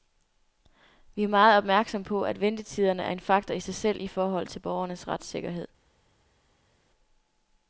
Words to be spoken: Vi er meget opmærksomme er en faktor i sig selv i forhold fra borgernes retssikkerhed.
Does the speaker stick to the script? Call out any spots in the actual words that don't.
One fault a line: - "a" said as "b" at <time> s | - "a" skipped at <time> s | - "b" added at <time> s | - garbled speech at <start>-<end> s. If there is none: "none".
- "på at ventetiderne" added at 2.0 s
- "fra" said as "til" at 4.5 s